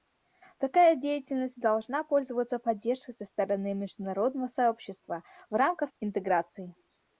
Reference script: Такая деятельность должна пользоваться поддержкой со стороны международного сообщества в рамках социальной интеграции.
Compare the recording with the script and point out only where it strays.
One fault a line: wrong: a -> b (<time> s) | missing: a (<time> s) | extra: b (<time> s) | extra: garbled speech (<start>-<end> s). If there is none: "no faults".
missing: социальной (5.9 s)